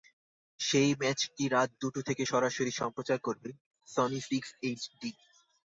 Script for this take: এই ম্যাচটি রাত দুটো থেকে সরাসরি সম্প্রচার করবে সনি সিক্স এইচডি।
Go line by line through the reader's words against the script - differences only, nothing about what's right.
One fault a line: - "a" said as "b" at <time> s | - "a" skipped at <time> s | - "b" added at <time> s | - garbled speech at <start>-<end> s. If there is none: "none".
- "এই" said as "সেই" at 0.6 s